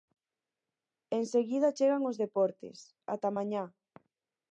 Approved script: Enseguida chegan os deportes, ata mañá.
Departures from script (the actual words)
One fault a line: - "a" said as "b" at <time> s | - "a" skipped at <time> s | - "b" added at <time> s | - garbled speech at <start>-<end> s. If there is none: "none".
none